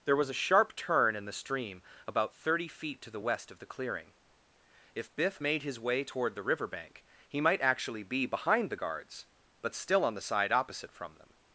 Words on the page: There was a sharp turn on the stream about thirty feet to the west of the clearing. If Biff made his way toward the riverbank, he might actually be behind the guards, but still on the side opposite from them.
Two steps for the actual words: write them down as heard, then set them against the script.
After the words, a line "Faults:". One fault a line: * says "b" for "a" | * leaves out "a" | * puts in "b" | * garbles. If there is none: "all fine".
There was a sharp turn in the stream about thirty feet to the west of the clearing. If Biff made his way toward the riverbank, he might actually be behind the guards, but still on the side opposite from them.
Faults:
* says "in" for "on"